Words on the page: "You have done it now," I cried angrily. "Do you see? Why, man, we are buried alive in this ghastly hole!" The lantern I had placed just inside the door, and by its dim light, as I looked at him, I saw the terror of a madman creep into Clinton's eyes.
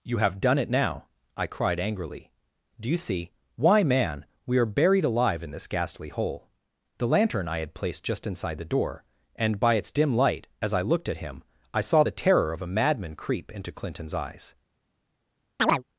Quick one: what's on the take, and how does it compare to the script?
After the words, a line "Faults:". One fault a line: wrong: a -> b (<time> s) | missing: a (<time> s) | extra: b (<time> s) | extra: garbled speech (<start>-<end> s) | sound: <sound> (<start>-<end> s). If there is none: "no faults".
"You have done it now," I cried angrily. "Do you see? Why, man, we are buried alive in this ghastly hole!" The lantern I had placed just inside the door, and by its dim light, as I looked at him, I saw the terror of a madman creep into Clinton's eyes.
Faults:
sound: chirp (15.6-15.8 s)